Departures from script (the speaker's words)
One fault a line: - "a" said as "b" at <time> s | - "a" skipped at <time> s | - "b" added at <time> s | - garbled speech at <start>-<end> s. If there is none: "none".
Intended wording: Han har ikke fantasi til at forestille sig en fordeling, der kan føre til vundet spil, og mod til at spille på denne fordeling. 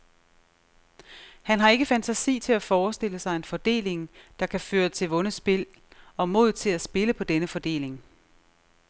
none